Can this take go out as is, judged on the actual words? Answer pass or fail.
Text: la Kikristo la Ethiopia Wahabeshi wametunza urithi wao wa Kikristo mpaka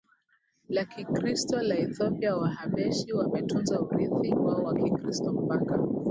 pass